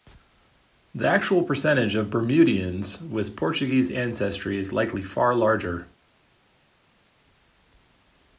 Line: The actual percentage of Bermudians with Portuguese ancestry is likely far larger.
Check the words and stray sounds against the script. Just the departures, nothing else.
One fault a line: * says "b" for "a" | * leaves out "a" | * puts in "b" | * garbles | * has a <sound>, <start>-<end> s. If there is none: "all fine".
all fine